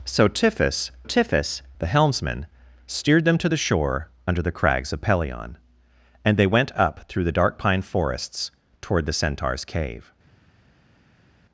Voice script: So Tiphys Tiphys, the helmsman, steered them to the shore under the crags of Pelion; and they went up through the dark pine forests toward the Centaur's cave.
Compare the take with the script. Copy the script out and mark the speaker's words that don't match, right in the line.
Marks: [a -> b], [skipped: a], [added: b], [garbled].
So Tiphys Tiphys, the helmsman, steered them to the shore under the crags of Pelion; and they went up through the dark pine forests toward the Centaur's cave.